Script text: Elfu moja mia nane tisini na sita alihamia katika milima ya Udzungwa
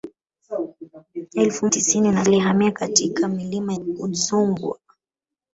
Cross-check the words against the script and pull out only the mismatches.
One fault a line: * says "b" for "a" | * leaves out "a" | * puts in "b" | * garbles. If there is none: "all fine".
* leaves out "moja mia nane"
* leaves out "sita"
* leaves out "ya"